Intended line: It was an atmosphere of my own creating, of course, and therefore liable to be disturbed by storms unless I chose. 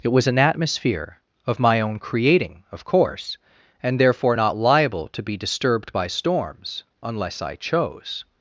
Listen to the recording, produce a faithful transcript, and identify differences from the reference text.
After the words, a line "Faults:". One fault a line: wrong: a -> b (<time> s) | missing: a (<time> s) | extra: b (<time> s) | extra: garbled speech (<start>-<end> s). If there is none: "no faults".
It was an atmosphere of my own creating, of course, and therefore not liable to be disturbed by storms unless I chose.
Faults:
extra: not (4.3 s)